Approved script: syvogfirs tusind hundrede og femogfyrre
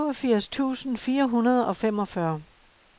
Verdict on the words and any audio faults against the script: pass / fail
fail